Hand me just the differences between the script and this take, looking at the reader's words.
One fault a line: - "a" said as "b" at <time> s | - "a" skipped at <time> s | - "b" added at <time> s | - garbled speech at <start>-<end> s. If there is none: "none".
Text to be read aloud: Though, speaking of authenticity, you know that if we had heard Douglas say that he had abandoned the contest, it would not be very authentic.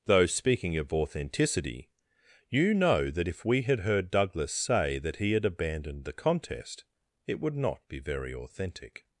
none